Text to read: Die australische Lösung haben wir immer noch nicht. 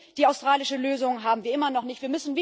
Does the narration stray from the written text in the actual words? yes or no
no